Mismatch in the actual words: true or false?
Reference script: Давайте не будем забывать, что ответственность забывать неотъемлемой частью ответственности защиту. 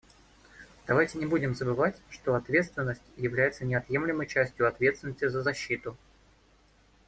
true